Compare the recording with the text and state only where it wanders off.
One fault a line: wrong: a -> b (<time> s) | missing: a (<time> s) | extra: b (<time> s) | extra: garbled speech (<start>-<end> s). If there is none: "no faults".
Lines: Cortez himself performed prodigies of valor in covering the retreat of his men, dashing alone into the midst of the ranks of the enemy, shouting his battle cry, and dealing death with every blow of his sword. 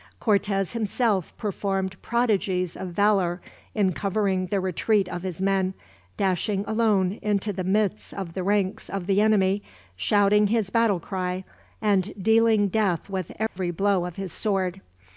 no faults